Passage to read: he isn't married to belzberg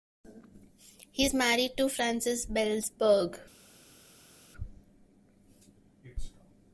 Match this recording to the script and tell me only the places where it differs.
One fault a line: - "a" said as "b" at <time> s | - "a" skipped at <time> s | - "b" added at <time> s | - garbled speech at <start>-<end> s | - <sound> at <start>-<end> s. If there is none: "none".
- "isn't" said as "is" at 1.2 s
- "frances" added at 1.9 s